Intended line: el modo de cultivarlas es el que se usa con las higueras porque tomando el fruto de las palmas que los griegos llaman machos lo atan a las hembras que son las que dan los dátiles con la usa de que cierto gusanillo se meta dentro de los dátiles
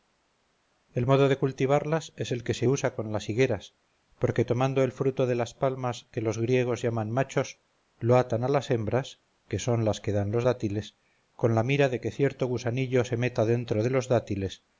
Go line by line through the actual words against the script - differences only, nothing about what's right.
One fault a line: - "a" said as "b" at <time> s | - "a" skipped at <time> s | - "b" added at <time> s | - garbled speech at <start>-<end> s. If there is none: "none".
- "usa" said as "mira" at 11.6 s